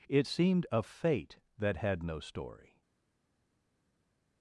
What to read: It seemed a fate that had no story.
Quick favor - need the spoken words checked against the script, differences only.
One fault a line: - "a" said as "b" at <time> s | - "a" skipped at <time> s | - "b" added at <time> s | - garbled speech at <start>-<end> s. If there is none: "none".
none